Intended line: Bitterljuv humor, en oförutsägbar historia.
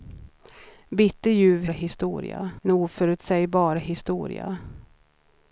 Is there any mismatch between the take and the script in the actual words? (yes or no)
yes